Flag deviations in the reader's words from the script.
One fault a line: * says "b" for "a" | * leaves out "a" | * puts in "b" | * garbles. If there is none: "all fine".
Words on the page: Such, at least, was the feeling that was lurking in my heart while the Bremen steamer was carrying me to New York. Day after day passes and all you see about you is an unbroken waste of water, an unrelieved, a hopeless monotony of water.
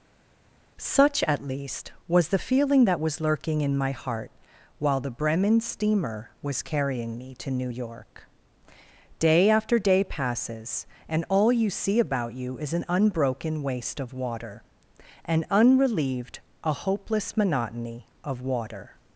all fine